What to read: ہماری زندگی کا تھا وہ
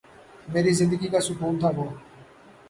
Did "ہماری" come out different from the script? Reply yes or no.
yes